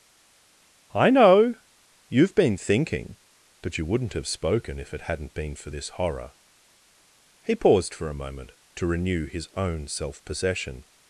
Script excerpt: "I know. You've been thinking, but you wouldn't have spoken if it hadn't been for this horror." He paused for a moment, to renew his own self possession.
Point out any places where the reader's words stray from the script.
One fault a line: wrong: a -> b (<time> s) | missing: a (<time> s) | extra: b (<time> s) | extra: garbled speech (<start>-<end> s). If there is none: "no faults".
no faults